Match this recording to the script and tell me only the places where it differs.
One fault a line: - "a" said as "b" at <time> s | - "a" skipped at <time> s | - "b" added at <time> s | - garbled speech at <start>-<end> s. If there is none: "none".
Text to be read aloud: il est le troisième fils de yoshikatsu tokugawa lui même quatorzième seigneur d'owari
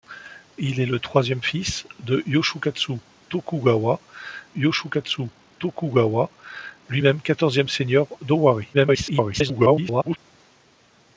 - "yoshikatsu tokugawa" added at 4.5 s
- garbled speech at 8.7-10.2 s